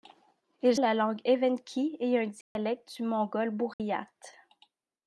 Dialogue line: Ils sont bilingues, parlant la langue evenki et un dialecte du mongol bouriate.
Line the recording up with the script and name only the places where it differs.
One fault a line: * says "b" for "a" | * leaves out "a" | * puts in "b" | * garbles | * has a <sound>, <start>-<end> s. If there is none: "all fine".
* leaves out "sont bilingues parlant"
* has a dropout, 2.4-2.6 s
* has a dropout, 3.7-3.8 s